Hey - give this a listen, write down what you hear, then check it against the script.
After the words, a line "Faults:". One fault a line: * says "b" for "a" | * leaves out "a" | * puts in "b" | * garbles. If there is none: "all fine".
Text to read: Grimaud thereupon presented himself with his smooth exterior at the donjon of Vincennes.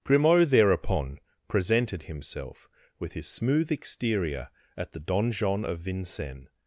Grimaud thereupon presented himself with his smooth exterior at the donjon of Vincennes.
Faults:
all fine